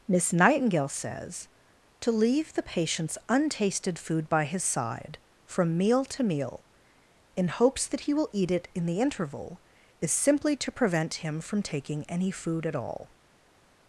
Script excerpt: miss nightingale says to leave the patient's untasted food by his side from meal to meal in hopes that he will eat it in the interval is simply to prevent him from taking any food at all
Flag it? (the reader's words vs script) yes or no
no